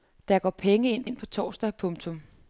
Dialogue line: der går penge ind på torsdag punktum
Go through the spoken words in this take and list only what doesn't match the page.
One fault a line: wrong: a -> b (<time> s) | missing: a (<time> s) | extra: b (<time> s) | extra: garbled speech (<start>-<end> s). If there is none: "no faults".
extra: ind (1.0 s)